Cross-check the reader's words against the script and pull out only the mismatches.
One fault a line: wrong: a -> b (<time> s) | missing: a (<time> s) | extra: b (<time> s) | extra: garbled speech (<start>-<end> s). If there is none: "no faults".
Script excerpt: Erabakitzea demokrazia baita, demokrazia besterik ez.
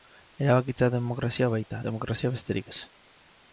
no faults